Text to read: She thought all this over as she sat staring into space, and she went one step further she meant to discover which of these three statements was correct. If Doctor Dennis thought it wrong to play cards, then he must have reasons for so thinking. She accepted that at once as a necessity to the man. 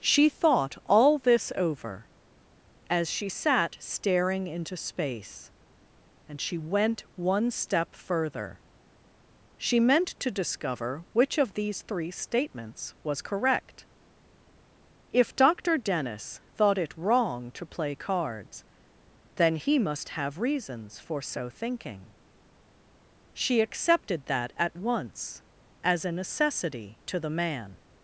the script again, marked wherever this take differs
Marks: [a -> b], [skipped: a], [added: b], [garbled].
She thought all this over as she sat staring into space, and she went one step further she meant to discover which of these three statements was correct. If Doctor Dennis thought it wrong to play cards, then he must have reasons for so thinking. She accepted that at once as a necessity to the man.